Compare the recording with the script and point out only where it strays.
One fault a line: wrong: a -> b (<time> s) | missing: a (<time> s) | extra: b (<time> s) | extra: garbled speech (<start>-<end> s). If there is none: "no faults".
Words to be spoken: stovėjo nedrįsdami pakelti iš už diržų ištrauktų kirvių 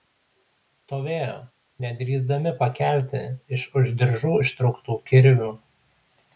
no faults